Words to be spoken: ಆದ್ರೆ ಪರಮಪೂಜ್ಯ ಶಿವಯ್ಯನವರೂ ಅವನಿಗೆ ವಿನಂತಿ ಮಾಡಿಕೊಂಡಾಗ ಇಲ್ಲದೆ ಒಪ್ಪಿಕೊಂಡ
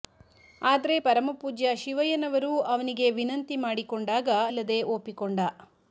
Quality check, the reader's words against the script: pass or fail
pass